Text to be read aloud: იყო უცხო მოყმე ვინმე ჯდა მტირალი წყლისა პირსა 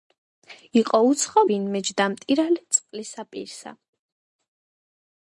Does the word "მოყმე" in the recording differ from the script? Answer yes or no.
yes